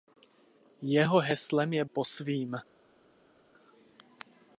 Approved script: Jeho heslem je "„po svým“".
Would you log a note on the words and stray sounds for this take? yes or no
no